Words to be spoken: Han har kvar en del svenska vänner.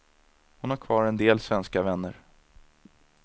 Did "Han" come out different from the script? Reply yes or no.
yes